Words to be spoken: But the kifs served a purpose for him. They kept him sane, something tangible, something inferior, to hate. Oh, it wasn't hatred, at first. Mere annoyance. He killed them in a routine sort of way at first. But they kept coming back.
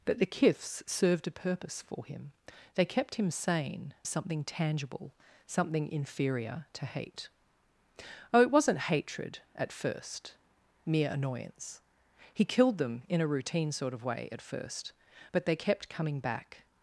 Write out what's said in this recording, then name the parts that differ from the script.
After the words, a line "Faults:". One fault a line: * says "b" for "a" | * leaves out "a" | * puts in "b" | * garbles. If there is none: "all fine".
But the kifs served a purpose for him. They kept him sane, something tangible, something inferior, to hate. Oh, it wasn't hatred, at first. Mere annoyance. He killed them in a routine sort of way at first. But they kept coming back.
Faults:
all fine